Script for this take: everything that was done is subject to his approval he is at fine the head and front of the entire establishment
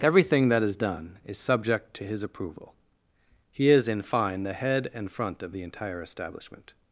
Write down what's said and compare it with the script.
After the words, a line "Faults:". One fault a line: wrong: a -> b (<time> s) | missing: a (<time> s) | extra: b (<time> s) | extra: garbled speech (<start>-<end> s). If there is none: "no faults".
everything that is done is subject to his approval he is in fine the head and front of the entire establishment
Faults:
wrong: was -> is (0.6 s)
wrong: at -> in (3.9 s)